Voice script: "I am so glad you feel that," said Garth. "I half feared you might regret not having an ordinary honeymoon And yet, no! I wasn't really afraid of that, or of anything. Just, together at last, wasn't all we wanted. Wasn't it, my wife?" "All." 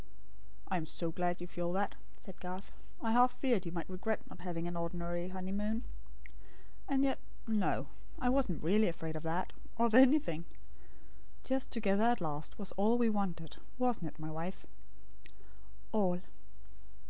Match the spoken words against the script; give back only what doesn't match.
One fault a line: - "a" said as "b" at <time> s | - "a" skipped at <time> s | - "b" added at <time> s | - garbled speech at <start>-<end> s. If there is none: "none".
- "wasn't" said as "was" at 12.6 s